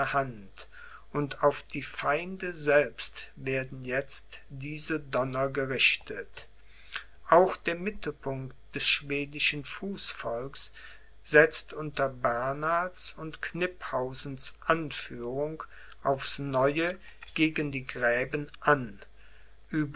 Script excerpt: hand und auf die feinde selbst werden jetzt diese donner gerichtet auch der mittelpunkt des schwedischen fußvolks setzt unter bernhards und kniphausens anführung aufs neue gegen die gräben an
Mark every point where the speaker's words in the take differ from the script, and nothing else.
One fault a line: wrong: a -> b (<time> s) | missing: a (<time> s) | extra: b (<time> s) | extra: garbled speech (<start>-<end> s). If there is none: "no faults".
no faults